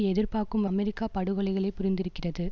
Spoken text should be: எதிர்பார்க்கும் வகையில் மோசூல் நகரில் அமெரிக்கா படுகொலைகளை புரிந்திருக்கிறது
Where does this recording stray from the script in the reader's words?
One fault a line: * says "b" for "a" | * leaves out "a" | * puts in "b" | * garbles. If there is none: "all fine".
* leaves out "வகையில் மோசூல் நகரில்"